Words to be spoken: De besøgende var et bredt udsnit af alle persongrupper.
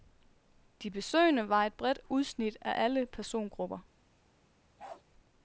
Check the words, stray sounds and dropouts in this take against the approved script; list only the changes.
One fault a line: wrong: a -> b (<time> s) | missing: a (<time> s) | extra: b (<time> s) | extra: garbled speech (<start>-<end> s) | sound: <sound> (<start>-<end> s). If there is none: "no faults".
sound: bark (4.8-5.0 s)